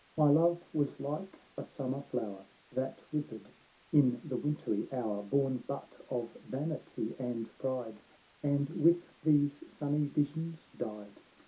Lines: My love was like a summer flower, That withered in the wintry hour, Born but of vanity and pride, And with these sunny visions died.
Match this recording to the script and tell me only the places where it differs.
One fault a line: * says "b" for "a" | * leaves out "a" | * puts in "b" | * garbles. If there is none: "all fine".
all fine